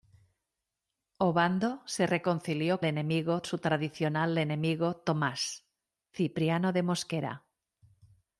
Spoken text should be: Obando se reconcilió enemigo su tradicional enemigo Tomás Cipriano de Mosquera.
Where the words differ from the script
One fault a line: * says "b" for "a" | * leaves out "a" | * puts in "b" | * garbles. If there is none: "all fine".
all fine